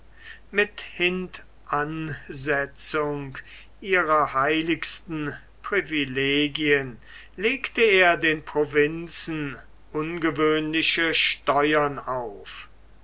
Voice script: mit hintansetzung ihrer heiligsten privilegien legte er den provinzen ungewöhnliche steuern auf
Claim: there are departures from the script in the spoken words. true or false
false